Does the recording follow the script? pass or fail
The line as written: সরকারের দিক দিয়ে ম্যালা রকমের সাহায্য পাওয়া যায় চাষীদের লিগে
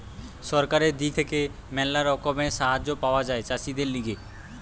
fail